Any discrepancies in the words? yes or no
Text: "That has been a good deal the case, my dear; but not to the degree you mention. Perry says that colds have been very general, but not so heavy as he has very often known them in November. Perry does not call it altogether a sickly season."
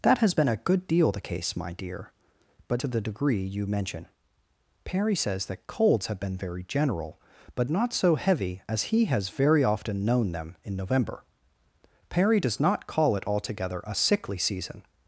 yes